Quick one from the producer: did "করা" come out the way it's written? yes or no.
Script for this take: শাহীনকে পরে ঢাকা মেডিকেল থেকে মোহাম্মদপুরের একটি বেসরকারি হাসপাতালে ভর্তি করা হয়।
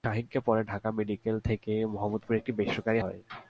no